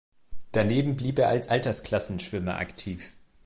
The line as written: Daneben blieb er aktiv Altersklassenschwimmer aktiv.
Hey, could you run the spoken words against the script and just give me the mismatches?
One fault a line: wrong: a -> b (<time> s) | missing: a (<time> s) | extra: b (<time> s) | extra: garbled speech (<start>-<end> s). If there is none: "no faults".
wrong: aktiv -> als (1.3 s)